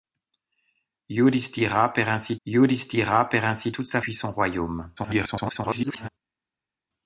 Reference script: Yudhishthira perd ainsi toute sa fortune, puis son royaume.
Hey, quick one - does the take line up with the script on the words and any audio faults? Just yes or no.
no